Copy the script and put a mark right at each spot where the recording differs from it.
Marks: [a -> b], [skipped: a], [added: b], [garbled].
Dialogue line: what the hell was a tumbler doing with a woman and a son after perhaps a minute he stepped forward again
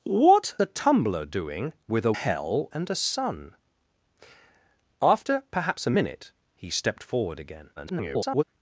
what [skipped: the hell was] a tumbler doing with a [woman -> hell] and a son after perhaps a minute he stepped forward again [garbled]